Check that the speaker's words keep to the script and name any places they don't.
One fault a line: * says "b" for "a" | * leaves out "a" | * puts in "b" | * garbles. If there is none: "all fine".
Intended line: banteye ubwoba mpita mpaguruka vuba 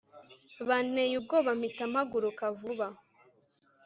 all fine